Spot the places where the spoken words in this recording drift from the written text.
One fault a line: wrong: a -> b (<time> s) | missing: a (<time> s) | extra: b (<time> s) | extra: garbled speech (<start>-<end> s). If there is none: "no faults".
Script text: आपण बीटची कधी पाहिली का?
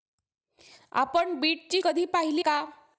no faults